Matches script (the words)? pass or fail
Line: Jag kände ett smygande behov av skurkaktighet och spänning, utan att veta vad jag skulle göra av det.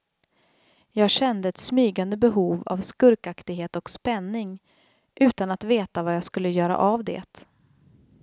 pass